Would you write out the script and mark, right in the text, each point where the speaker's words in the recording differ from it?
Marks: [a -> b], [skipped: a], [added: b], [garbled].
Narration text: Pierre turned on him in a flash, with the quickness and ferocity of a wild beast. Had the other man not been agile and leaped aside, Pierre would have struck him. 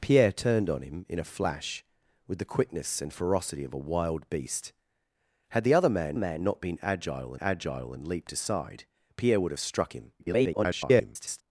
Pierre turned on him in a flash, with the quickness and ferocity of a wild beast. Had the other man [added: man] not been agile [added: agile] and leaped aside, Pierre would have struck him. [garbled]